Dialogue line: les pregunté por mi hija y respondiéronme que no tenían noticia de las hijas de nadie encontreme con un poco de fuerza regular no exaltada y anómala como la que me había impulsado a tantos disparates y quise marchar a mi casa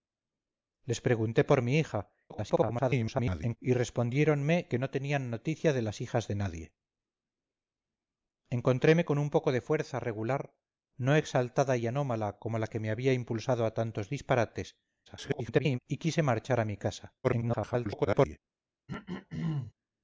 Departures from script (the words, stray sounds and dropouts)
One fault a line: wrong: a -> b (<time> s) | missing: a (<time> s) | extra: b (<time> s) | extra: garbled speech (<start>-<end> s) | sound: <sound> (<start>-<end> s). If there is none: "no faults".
extra: garbled speech (2.3-3.6 s)
extra: garbled speech (15.1-15.8 s)
extra: garbled speech (17.2-18.4 s)
sound: throat clearing (18.9-19.7 s)